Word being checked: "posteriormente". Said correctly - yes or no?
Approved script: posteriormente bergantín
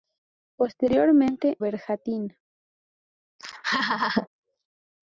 yes